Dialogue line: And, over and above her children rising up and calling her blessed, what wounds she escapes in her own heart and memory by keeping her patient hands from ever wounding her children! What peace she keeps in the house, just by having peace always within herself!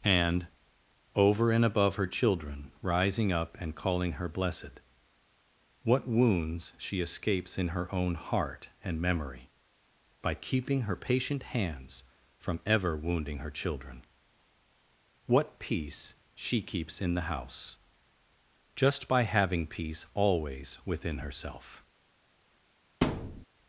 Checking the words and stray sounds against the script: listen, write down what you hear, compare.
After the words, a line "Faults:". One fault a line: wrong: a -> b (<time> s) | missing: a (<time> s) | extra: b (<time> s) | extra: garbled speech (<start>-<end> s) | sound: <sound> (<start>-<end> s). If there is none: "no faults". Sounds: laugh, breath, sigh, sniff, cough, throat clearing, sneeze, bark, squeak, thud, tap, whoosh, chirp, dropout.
And, over and above her children rising up and calling her blessed, what wounds she escapes in her own heart and memory by keeping her patient hands from ever wounding her children! What peace she keeps in the house, just by having peace always within herself!
Faults:
sound: thud (23.0-23.5 s)